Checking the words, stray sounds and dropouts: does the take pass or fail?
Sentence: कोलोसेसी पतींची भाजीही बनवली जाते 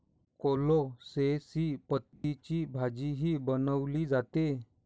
fail